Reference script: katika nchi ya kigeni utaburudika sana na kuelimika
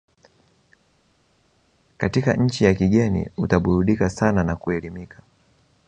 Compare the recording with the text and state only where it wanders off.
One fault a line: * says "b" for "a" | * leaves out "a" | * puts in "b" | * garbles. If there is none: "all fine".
all fine